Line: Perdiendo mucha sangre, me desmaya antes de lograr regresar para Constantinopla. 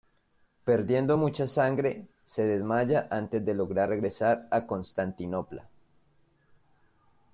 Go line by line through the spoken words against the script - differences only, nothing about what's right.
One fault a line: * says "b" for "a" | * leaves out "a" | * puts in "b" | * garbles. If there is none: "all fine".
* says "se" for "me"
* says "a" for "para"